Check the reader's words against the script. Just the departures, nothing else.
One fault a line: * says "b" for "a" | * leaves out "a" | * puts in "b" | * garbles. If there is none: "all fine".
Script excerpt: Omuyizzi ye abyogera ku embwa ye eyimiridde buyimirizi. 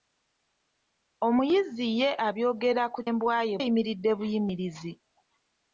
all fine